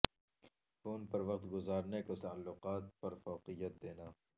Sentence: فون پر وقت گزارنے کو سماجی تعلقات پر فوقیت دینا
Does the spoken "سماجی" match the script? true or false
false